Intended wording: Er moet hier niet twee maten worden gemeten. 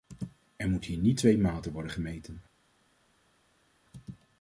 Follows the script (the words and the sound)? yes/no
yes